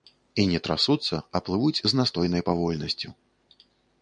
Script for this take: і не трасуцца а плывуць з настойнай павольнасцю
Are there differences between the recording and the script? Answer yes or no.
no